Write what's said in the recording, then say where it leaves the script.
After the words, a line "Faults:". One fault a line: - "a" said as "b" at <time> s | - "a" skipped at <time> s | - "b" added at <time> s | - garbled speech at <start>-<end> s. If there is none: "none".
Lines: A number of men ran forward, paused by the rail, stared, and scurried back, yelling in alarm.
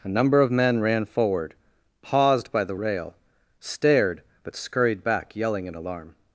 A number of men ran forward, paused by the rail, stared, but scurried back, yelling in alarm.
Faults:
- "and" said as "but" at 4.4 s